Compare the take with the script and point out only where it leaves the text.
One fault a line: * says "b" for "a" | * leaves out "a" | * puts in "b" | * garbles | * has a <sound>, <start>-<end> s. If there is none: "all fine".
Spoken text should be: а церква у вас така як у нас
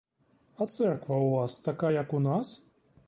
all fine